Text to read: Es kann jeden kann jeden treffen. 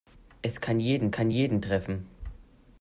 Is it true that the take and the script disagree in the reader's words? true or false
false